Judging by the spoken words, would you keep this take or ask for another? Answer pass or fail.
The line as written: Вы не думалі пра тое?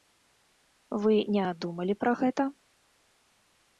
fail